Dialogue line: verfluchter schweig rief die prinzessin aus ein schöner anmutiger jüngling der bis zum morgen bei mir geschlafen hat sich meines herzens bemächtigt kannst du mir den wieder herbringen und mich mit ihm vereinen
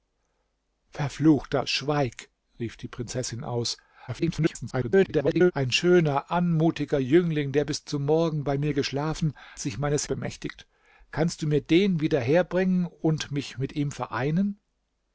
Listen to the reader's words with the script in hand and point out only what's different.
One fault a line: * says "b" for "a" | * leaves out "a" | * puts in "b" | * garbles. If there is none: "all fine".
* garbles
* leaves out "hat"
* leaves out "herzens"